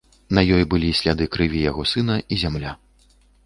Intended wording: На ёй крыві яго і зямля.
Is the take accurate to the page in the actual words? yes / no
no